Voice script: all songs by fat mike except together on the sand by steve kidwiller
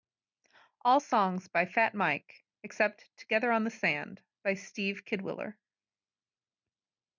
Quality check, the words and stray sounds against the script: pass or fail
pass